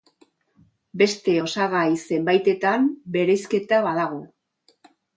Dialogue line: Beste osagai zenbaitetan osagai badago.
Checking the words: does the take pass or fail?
fail